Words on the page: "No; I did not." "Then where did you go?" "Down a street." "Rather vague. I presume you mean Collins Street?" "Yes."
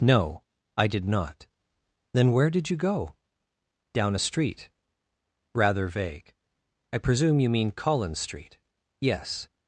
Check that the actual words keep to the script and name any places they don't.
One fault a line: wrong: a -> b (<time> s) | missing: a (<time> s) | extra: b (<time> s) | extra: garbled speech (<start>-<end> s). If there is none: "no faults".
no faults